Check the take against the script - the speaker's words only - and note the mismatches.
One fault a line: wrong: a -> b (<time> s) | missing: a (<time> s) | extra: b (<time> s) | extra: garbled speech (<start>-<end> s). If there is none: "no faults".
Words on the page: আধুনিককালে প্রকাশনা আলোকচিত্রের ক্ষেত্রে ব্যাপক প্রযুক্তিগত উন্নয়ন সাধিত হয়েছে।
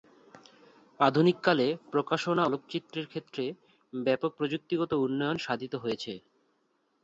no faults